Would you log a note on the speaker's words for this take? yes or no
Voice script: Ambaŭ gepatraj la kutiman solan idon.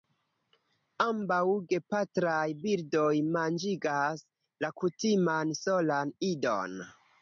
yes